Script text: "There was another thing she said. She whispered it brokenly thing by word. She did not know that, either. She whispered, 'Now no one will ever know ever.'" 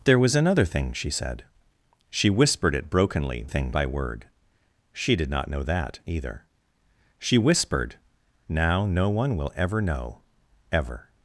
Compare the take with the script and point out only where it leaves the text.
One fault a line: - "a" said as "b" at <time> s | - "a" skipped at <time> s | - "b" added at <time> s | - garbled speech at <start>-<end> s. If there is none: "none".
none